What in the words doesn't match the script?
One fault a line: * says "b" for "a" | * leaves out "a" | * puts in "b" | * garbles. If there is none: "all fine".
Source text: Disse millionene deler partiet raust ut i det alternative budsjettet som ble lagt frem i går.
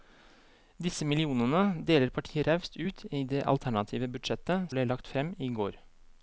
* leaves out "som"